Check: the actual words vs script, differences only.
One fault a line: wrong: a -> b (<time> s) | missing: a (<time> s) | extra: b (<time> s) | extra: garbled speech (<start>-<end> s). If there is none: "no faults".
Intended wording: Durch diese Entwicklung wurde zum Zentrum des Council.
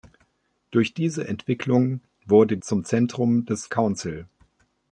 no faults